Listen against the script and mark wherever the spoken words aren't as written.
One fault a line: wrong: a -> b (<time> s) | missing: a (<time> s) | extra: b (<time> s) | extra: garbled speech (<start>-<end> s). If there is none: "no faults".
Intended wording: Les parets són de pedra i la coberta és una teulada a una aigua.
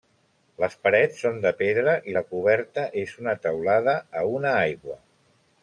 no faults